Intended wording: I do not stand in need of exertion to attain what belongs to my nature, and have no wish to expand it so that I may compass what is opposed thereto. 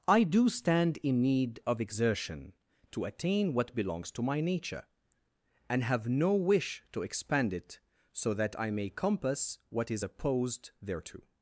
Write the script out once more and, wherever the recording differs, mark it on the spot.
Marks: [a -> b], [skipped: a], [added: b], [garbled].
I do [skipped: not] stand in need of exertion to attain what belongs to my nature, and have no wish to expand it so that I may compass what is opposed thereto.